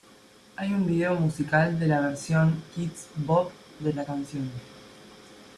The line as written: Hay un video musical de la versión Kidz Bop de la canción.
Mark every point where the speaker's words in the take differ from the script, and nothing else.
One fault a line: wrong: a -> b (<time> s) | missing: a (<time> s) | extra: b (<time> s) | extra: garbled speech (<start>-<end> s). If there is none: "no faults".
no faults